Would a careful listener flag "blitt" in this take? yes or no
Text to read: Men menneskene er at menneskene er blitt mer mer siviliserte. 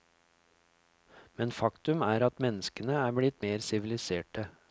no